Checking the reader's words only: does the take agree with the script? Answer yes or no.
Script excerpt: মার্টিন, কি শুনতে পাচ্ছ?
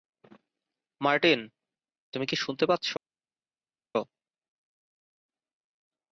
no